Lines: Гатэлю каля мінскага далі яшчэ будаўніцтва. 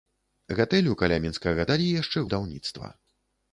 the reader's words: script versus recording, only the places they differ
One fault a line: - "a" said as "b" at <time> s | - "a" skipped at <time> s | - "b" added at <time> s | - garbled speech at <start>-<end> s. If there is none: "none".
none